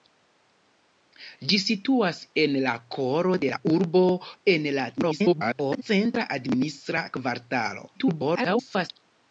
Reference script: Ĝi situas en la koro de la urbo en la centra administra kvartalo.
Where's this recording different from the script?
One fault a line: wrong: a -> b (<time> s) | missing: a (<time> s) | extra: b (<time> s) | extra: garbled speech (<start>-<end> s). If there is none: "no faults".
extra: garbled speech (5.0-5.8 s)
extra: garbled speech (7.9-8.9 s)